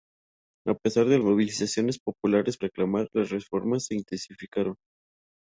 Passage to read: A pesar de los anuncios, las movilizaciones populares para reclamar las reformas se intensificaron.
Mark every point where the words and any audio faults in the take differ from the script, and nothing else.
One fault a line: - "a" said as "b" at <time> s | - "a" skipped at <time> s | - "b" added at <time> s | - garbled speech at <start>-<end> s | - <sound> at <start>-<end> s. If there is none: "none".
- "los anuncios las" skipped at 1.2 s
- "para" skipped at 2.6 s